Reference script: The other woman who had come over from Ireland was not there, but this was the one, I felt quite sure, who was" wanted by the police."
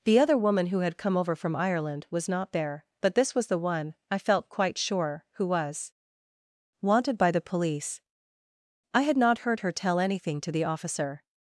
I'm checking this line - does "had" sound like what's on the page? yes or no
yes